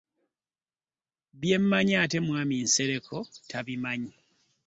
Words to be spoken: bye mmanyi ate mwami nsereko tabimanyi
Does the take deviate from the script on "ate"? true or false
false